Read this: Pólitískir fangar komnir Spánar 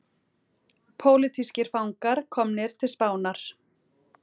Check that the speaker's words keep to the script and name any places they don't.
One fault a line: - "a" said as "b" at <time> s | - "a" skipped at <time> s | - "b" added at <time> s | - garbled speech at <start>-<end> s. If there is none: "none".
- "til" added at 2.8 s